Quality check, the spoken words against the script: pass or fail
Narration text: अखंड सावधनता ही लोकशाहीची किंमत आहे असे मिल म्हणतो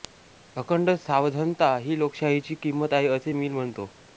pass